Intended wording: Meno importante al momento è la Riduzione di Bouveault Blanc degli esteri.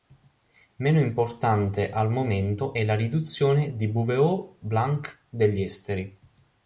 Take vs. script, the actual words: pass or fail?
pass